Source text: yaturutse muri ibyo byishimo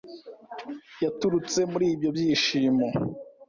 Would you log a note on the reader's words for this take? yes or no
no